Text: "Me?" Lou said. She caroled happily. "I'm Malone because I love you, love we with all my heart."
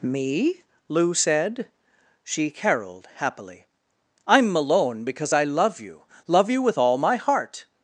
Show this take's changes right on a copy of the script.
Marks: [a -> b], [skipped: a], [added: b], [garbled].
"Me?" Lou said. She caroled happily. "I'm Malone because I love you, love [we -> you] with all my heart."